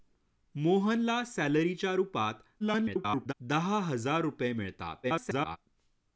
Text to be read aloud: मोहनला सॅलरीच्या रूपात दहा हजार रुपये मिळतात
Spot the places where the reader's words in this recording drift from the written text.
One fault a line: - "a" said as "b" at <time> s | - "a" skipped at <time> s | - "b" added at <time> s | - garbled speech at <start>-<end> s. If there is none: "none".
- garbled speech at 2.6-3.3 s
- garbled speech at 5.0-5.6 s